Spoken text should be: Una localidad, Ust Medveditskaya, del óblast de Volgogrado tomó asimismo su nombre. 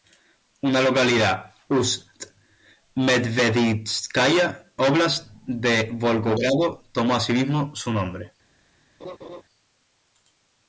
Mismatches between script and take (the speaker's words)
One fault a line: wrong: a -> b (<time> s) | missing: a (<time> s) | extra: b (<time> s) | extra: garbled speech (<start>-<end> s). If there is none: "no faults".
missing: del (4.7 s)